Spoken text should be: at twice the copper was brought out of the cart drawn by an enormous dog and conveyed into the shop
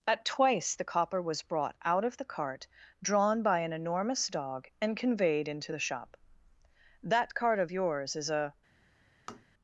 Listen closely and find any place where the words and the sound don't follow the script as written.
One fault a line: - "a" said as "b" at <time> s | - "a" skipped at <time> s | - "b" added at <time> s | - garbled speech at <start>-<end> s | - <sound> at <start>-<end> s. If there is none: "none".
- "that cart of yours is a" added at 7.0 s
- tap at 9.3-9.4 s